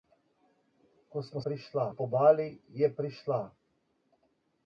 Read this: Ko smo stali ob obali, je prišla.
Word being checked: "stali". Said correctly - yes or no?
no